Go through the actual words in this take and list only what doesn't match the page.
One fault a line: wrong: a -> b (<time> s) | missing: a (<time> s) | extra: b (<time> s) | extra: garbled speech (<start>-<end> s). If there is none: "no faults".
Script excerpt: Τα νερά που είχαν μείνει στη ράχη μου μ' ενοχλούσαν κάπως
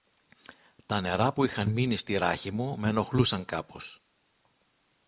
no faults